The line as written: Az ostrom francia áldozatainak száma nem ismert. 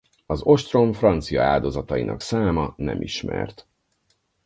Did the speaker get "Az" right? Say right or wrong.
right